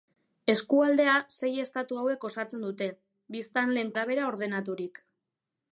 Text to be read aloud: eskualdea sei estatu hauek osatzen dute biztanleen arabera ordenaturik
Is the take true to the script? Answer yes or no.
yes